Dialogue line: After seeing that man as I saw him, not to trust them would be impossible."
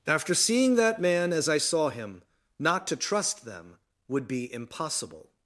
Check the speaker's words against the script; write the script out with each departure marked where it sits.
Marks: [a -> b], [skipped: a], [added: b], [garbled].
After seeing that man as I saw him, not to trust them would be impossible."